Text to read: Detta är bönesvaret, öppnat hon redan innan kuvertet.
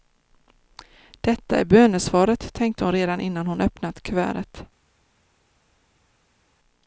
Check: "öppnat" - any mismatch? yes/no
yes